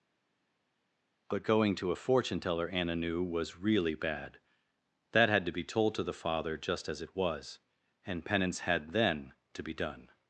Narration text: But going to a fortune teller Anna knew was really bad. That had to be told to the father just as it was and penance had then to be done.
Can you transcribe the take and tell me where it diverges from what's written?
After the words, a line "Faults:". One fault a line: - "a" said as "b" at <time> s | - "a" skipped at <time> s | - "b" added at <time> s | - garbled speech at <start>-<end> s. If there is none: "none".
But going to a fortune teller Anna knew was really bad. That had to be told to the father just as it was and penance had then to be done.
Faults:
none